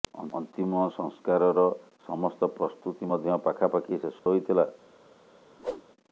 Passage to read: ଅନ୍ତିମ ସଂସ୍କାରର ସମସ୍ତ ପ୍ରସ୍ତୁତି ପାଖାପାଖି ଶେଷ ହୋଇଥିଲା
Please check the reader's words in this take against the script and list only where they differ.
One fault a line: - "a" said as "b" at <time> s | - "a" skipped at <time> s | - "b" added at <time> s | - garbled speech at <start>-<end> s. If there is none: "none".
- "ମଧ୍ୟ" added at 3.1 s